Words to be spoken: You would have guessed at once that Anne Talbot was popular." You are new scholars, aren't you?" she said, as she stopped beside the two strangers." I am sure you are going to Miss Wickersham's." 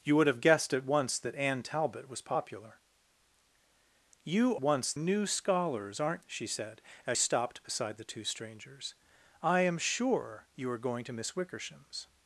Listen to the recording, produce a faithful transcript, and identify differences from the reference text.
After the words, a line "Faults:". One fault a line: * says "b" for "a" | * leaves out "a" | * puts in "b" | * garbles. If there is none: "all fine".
You would have guessed at once that Anne Talbot was popular." You once new scholars, aren't?" she said, as stopped beside the two strangers." I am sure you are going to Miss Wickersham's."
Faults:
* says "once" for "are"
* leaves out "you"
* leaves out "she"